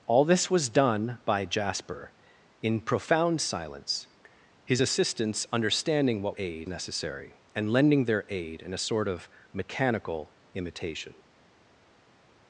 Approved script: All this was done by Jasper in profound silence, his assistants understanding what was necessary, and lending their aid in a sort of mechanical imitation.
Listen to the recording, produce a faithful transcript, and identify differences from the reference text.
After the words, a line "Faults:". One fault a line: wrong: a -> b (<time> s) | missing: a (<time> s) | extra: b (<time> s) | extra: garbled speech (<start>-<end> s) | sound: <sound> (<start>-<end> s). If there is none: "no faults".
All this was done by Jasper in profound silence, his assistants understanding what aid necessary, and lending their aid in a sort of mechanical imitation.
Faults:
wrong: was -> aid (6.4 s)